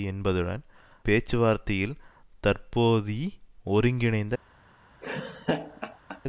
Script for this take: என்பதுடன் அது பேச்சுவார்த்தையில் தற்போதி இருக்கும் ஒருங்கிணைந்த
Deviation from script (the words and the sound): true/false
true